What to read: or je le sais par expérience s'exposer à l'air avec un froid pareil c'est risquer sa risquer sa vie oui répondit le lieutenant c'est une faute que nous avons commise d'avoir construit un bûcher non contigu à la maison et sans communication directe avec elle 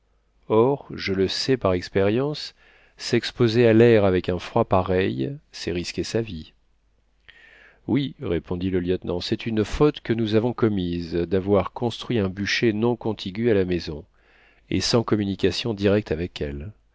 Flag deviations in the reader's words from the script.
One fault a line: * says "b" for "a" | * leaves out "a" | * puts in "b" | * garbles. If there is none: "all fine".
* leaves out "risquer sa"